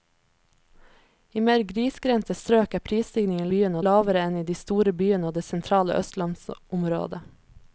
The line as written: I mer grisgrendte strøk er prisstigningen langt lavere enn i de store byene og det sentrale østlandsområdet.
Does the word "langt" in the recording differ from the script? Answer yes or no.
yes